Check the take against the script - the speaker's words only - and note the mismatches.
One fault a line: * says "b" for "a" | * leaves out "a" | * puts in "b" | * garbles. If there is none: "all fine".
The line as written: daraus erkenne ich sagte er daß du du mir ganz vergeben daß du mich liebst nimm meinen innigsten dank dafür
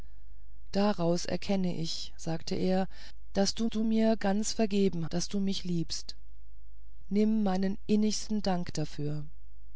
all fine